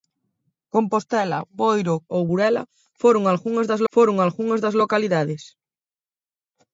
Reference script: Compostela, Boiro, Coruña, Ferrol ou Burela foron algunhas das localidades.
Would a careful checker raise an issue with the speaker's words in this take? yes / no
yes